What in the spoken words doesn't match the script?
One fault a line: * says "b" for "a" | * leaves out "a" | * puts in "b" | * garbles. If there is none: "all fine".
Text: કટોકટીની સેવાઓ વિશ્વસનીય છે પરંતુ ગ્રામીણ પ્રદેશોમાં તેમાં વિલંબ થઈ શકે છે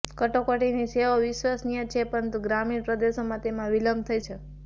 * leaves out "શકે"